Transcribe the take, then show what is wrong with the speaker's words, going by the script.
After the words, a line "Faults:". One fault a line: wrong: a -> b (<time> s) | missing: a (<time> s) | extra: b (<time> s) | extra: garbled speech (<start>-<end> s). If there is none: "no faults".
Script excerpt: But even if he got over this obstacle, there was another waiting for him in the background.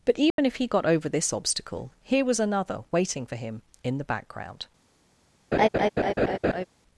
But even if he got over this obstacle, here was another waiting for him in the background.
Faults:
wrong: there -> here (2.0 s)